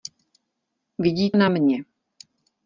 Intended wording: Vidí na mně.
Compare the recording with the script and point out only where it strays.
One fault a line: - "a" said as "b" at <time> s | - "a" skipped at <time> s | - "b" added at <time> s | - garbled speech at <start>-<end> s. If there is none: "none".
none